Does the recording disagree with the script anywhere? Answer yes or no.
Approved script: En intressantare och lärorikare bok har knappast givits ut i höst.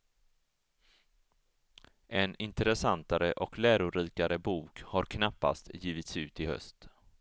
no